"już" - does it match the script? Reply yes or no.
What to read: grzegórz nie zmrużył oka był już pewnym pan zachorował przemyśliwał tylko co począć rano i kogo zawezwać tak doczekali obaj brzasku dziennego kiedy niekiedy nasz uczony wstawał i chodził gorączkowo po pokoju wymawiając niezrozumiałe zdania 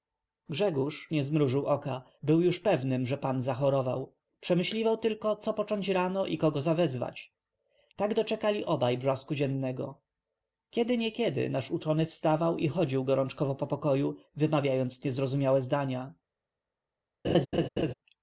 yes